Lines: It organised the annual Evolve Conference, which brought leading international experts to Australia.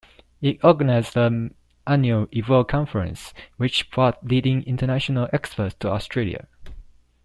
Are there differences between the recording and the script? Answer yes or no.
no